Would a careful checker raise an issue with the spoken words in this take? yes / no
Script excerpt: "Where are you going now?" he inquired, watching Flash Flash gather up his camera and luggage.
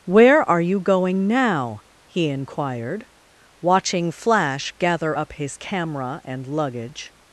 yes